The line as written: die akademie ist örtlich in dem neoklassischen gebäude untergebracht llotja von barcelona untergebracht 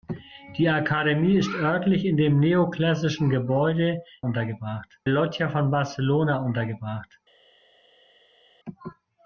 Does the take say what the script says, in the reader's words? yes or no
yes